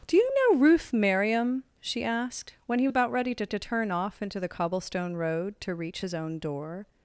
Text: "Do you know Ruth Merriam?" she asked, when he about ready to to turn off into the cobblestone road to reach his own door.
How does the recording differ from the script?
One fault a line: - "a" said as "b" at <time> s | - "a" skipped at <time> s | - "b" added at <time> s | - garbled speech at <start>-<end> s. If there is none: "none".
none